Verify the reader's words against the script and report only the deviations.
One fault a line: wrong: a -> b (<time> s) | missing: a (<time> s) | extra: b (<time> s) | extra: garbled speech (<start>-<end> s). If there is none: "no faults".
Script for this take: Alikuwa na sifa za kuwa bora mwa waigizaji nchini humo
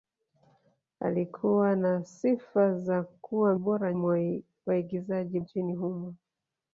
no faults